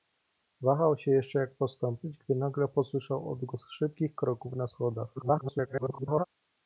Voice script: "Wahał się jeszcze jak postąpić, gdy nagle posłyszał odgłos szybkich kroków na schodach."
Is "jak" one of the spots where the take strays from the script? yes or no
no